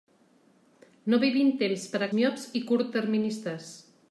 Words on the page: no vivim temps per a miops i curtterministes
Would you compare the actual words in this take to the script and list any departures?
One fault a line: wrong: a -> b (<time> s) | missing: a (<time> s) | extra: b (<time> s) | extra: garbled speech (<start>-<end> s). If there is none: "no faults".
no faults